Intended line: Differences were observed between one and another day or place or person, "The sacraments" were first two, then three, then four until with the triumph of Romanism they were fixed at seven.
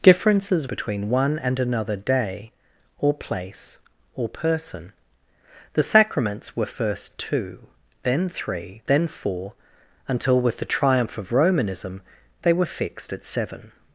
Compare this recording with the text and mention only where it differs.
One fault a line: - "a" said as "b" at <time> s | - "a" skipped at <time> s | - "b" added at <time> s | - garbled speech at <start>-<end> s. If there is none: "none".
- "were observed" skipped at 0.7 s